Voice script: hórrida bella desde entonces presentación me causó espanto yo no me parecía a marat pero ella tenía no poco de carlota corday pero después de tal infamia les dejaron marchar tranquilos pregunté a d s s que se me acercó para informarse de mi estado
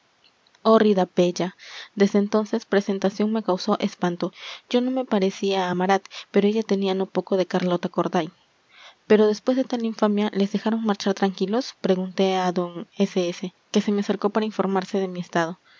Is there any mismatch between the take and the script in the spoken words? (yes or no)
no